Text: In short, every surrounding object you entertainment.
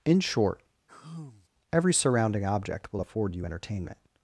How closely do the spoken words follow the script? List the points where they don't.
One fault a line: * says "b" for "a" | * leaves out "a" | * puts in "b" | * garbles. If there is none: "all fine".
* puts in "will afford"